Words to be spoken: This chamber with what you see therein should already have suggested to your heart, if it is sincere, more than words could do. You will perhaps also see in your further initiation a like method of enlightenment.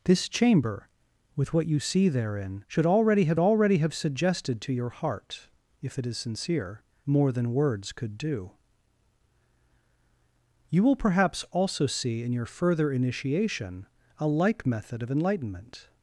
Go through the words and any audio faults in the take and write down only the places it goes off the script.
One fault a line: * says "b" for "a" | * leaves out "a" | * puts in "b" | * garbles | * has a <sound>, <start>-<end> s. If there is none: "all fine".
* puts in "already have"